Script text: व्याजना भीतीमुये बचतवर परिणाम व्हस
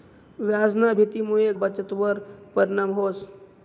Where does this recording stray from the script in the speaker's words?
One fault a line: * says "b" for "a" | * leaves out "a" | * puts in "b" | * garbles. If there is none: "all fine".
all fine